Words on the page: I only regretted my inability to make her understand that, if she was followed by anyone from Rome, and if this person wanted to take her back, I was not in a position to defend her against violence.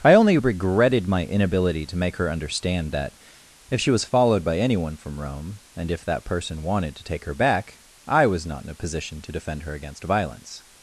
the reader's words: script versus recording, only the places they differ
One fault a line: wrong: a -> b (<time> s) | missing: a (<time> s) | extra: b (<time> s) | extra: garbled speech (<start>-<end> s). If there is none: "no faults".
wrong: this -> that (6.0 s)